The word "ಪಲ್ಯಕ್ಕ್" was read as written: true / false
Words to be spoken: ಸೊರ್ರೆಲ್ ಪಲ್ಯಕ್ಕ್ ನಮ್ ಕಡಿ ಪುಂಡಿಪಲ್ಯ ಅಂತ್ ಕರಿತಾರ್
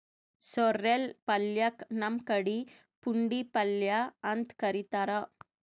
true